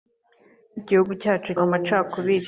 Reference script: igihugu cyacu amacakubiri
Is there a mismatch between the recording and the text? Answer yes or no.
no